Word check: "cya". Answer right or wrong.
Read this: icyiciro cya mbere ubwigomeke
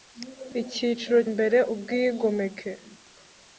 wrong